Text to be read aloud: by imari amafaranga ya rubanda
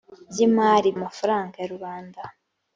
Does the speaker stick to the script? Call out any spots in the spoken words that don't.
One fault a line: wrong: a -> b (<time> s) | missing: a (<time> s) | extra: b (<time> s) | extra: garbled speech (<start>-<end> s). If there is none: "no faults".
no faults